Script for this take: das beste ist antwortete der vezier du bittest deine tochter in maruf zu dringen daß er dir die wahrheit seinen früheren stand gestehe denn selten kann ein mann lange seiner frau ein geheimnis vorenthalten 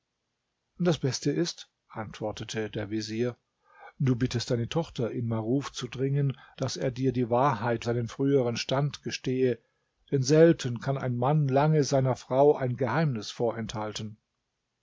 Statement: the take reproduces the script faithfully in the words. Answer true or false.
true